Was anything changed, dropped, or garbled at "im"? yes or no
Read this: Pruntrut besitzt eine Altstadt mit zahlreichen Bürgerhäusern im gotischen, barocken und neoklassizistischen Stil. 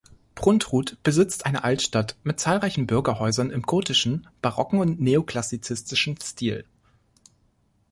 no